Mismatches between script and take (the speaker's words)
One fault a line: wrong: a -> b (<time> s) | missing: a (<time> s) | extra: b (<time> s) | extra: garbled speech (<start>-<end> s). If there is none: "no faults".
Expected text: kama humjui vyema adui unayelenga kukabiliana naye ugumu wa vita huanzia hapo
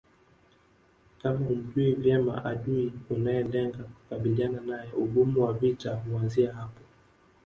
no faults